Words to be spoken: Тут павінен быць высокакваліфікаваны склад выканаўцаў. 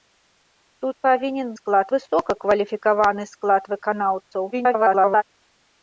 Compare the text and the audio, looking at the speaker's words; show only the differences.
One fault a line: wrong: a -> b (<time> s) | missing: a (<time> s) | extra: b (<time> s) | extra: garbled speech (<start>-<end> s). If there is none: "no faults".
wrong: быць -> склад (1.6 s)
extra: garbled speech (4.5-5.2 s)